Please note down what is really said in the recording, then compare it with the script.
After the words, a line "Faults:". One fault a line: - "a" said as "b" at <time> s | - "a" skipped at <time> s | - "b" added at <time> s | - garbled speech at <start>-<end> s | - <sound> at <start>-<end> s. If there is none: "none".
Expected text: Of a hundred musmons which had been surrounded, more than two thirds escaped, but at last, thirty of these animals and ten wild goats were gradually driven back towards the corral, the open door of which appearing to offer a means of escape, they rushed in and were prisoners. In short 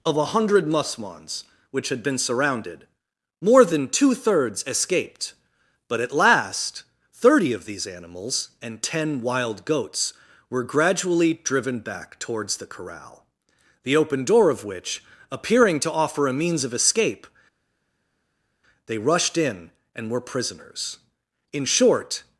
Of a hundred musmons which had been surrounded, more than two thirds escaped, but at last, thirty of these animals and ten wild goats were gradually driven back towards the corral, the open door of which appearing to offer a means of escape, they rushed in and were prisoners. In short
Faults:
none